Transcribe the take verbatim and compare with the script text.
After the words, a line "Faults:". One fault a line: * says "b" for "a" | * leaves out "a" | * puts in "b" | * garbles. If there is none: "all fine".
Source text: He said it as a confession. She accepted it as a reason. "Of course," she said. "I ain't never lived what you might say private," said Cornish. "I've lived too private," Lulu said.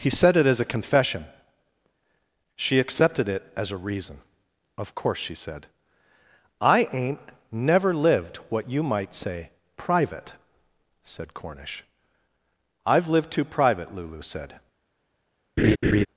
He said it as a confession. She accepted it as a reason. "Of course," she said. "I ain't never lived what you might say private," said Cornish. "I've lived too private," Lulu said.
Faults:
all fine